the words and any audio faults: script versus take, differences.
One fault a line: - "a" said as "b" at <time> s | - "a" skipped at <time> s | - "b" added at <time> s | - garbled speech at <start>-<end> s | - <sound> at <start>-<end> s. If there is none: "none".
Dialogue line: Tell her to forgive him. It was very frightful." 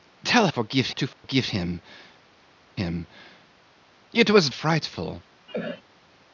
- "her" said as "forgive" at 0.5 s
- dropout at 1.1-1.2 s
- "him" added at 2.7 s
- "very" skipped at 4.5 s
- cough at 5.5-5.8 s